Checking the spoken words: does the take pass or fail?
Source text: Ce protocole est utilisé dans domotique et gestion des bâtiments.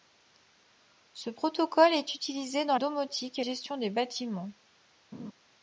pass